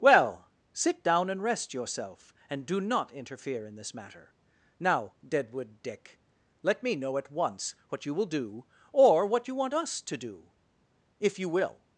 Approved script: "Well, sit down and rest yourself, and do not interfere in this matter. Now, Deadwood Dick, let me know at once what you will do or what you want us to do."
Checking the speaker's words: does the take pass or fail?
fail